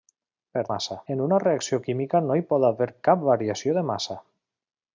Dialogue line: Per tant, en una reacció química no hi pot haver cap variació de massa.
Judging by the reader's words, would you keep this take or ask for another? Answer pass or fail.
fail